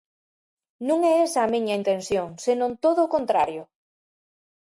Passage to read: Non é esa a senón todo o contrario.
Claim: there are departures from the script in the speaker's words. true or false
true